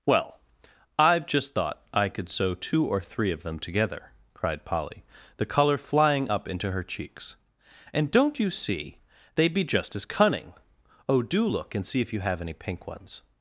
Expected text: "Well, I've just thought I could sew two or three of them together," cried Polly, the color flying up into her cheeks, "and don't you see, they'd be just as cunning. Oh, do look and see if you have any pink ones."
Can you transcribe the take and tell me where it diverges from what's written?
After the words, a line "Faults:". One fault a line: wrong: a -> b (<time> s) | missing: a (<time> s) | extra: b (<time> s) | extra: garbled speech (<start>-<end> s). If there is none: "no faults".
"Well, I've just thought I could sew two or three of them together," cried Polly, the color flying up into her cheeks, "and don't you see, they'd be just as cunning. Oh, do look and see if you have any pink ones."
Faults:
no faults